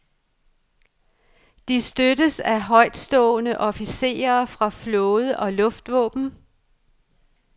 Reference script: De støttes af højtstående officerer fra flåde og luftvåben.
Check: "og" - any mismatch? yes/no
no